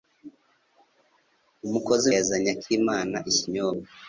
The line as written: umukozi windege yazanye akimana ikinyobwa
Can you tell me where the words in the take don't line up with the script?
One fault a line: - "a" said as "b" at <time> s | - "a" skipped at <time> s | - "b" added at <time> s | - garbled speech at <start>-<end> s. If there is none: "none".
- "windege" skipped at 2.0 s